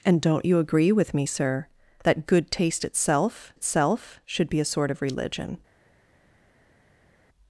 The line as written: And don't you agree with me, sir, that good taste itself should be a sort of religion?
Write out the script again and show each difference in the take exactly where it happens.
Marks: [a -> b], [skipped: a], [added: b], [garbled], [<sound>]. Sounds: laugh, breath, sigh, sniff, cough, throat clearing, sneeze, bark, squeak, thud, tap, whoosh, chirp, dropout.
And don't you agree with me, sir, that good taste itself [added: itself] should be a sort of religion?